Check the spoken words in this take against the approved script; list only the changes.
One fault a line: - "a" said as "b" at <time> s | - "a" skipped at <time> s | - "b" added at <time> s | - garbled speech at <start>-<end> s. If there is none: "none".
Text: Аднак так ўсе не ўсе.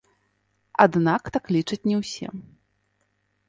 - "ўсе" said as "лічаць" at 1.6 s